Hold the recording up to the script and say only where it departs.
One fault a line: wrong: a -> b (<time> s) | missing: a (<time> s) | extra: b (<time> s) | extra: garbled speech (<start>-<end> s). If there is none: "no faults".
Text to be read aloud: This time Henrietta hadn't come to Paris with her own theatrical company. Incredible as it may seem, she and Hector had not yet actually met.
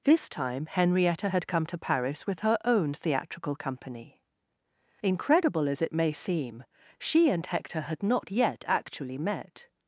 wrong: hadn't -> had (1.3 s)